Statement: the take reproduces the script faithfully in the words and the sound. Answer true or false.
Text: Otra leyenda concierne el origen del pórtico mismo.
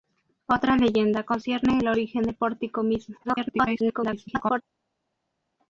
false